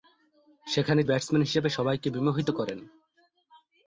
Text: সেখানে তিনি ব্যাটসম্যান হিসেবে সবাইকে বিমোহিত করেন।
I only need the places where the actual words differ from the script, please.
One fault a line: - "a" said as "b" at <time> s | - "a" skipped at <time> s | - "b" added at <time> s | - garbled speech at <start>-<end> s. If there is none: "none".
- "তিনি" skipped at 1.0 s